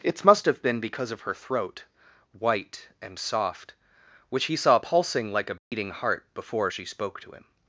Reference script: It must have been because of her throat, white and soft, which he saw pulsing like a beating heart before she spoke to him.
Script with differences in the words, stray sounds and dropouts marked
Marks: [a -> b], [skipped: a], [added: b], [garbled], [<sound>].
It must have been because of her throat, white and soft, which he saw pulsing like a beating [dropout] heart before she spoke to him.